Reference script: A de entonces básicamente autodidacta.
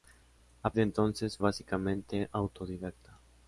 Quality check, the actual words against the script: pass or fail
pass